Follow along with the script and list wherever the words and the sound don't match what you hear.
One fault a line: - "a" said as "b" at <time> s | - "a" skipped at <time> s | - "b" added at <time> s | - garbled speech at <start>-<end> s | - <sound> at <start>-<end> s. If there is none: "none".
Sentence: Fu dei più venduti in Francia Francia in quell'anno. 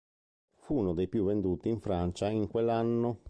- "uno" added at 0.8 s
- "Francia" skipped at 2.3 s